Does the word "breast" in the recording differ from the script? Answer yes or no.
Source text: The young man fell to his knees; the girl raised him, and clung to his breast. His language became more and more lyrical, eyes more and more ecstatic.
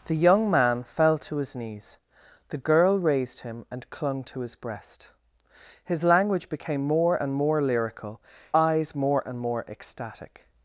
no